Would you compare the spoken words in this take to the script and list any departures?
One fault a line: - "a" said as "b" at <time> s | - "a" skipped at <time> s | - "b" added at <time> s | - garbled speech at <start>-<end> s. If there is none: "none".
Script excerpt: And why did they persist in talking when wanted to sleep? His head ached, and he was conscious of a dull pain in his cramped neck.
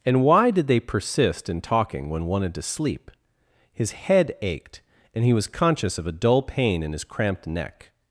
none